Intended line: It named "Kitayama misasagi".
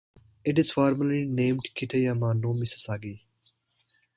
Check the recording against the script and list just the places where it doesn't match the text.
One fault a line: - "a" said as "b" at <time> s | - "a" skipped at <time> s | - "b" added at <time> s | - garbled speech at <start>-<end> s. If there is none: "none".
- "is formally" added at 0.6 s
- "no" added at 2.4 s